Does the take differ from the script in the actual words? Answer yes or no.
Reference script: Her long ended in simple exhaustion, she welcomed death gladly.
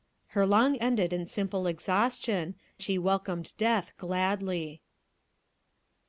no